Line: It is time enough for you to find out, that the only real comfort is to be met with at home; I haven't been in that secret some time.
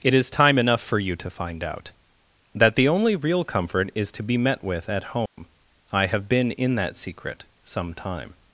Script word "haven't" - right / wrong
wrong